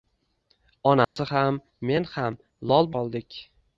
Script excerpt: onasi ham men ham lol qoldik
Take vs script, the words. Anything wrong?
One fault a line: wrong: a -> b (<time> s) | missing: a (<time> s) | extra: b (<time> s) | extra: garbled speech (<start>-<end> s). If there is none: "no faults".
no faults